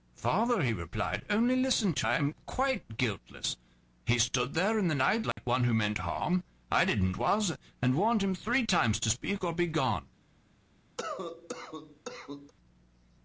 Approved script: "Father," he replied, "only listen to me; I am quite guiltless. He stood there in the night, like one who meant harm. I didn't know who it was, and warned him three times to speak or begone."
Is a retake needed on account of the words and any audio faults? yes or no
yes